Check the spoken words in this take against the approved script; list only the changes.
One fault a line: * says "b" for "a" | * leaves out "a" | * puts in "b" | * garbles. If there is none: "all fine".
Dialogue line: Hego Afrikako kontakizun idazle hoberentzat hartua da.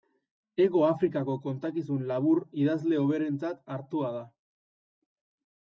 * puts in "labur"